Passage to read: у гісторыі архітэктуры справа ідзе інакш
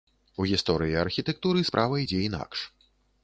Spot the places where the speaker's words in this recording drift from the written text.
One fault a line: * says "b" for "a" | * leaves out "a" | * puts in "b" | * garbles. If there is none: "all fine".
all fine